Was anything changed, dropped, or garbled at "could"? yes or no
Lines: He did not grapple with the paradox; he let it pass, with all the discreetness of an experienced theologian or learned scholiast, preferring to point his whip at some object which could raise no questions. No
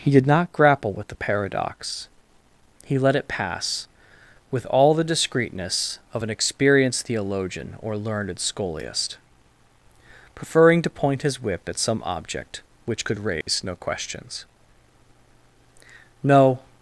no